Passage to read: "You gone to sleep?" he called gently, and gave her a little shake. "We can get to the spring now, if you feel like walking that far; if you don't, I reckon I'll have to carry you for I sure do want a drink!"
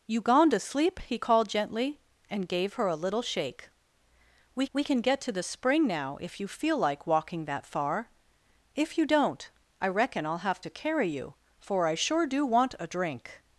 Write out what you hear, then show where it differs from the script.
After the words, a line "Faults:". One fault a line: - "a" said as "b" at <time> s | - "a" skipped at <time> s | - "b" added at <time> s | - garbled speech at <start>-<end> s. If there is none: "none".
"You gone to sleep?" he called gently, and gave her a little shake. "We we can get to the spring now, if you feel like walking that far; if you don't, I reckon I'll have to carry you for I sure do want a drink!"
Faults:
- "we" added at 4.7 s